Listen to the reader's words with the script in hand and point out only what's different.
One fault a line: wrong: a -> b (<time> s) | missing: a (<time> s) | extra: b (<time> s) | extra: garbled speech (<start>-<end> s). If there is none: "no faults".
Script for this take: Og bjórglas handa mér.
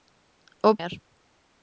missing: bjórglas handa (0.8 s)